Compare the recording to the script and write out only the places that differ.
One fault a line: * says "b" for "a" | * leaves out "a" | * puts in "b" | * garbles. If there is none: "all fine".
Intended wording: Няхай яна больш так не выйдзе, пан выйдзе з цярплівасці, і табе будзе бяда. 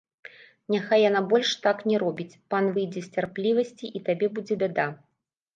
* says "робіць" for "выйдзе"